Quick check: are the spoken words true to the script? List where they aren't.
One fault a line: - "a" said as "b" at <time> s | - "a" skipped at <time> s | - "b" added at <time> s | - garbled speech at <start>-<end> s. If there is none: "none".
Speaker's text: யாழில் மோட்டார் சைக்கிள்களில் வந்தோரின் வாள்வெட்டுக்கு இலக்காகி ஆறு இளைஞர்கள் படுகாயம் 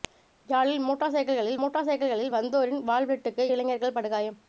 - "மோட்டார் சைக்கிள்களில்" added at 1.6 s
- "இலக்காகி ஆறு" skipped at 3.4 s